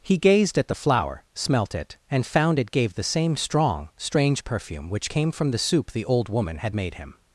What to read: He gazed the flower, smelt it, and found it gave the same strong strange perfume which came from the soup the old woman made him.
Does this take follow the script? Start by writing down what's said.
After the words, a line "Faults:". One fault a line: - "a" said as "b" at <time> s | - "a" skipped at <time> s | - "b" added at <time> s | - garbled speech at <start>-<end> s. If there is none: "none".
He gazed at the flower, smelt it, and found it gave the same strong strange perfume which came from the soup the old woman had made him.
Faults:
- "at" added at 0.6 s
- "had" added at 6.6 s